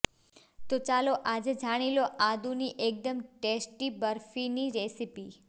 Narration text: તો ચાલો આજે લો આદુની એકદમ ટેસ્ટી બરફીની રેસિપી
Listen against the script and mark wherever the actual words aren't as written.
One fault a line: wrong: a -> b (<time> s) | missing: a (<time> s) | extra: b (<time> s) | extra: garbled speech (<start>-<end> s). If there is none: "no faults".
extra: જાણી (1.6 s)